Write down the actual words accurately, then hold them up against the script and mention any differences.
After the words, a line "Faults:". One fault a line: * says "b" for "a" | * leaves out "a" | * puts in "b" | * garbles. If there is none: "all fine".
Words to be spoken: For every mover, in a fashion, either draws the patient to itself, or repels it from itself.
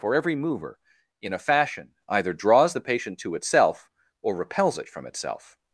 For every mover, in a fashion, either draws the patient to itself, or repels it from itself.
Faults:
all fine